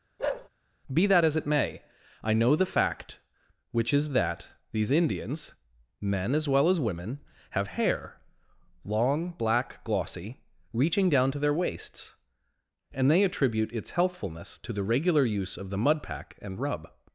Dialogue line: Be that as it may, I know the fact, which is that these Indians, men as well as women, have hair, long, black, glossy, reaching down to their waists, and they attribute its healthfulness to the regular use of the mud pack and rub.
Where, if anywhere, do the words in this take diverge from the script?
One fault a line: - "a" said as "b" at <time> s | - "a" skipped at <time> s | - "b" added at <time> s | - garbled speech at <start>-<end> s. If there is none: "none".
none